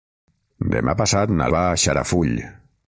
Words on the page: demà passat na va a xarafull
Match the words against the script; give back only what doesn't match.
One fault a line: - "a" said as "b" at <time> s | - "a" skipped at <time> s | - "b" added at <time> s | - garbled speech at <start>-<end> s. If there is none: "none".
none